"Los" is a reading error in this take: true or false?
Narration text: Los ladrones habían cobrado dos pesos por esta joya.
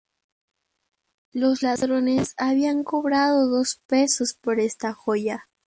false